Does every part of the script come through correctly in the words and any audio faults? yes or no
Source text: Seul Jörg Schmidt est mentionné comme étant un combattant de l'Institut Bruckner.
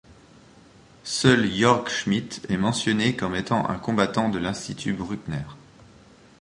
yes